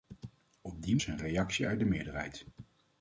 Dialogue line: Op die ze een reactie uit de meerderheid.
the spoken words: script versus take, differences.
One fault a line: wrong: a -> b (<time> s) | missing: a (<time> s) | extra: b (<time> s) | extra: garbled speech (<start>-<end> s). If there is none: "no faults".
no faults